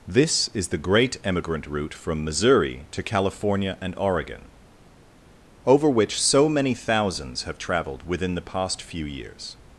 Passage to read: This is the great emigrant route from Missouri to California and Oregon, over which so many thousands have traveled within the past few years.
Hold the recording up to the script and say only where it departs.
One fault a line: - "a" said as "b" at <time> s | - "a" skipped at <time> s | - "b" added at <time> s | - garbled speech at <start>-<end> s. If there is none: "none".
none